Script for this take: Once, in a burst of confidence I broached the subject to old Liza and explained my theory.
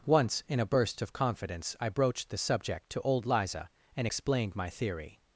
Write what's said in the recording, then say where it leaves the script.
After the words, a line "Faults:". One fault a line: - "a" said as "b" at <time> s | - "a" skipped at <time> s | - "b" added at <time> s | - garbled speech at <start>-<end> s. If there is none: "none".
Once, in a burst of confidence I broached the subject to old Liza and explained my theory.
Faults:
none